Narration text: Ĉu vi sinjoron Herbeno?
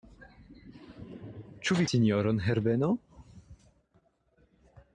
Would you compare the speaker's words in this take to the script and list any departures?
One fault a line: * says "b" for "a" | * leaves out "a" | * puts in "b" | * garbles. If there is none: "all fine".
all fine